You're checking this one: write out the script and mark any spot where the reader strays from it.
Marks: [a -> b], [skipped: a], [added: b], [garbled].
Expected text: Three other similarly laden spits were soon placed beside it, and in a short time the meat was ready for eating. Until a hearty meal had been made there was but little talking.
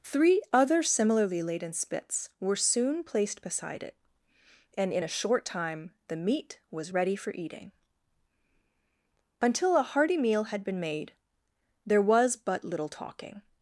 Three other similarly laden spits were soon placed beside it, and in a short time the meat was ready for eating. Until a hearty meal had been made there was but little talking.